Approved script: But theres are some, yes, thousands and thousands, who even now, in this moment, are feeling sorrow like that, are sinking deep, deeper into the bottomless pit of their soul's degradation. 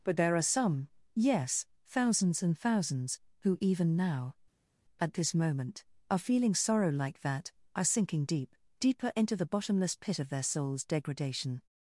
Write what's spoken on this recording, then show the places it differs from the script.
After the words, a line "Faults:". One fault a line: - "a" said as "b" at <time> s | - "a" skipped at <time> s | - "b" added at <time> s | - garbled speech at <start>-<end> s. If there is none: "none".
But there are some, yes, thousands and thousands, who even now, at this moment, are feeling sorrow like that, are sinking deep, deeper into the bottomless pit of their soul's degradation.
Faults:
- "theres" said as "there" at 0.2 s
- "in" said as "at" at 5.0 s